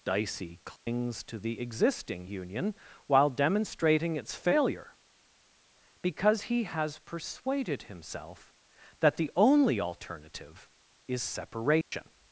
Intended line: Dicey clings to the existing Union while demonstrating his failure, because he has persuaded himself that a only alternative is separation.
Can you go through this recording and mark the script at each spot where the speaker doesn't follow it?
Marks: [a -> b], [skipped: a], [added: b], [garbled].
Dicey clings to the existing Union while demonstrating [his -> its] failure, because he has persuaded himself that [a -> the] only alternative is separation.